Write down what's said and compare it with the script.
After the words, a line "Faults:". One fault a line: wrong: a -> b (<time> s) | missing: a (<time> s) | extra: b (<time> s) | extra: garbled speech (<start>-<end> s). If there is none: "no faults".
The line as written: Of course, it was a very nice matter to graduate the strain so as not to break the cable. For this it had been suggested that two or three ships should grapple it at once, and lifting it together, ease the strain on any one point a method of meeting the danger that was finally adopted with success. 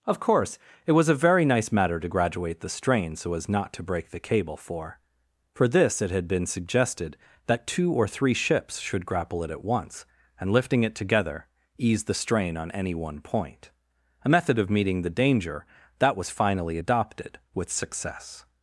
Of course, it was a very nice matter to graduate the strain so as not to break the cable. For For this it had been suggested that two or three ships should grapple it at once, and lifting it together, ease the strain on any one point a method of meeting the danger that was finally adopted with success.
Faults:
extra: For (5.5 s)